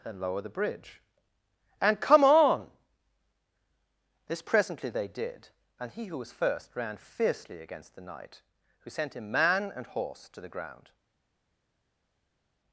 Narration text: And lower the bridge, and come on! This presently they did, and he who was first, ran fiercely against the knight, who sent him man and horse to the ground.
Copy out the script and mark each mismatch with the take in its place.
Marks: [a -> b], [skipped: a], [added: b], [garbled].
And lower the bridge, and come on! This presently they did, and he who was first, ran fiercely against the knight, who sent him man and horse to the ground.